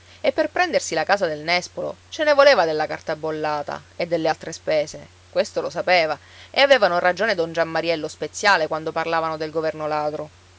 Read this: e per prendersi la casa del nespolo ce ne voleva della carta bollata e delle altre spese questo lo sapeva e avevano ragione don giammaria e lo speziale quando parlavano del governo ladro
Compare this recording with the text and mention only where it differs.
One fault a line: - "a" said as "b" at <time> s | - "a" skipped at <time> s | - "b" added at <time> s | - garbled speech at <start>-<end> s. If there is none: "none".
none